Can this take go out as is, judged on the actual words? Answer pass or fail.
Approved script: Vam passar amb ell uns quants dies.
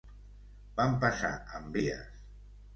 fail